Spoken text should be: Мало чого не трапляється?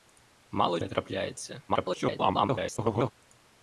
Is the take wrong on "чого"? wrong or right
wrong